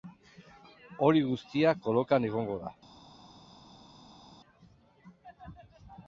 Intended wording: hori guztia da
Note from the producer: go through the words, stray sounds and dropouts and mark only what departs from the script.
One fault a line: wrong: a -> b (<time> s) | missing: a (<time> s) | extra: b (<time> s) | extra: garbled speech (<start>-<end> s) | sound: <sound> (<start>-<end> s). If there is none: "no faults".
extra: kolokan egongo (1.9 s)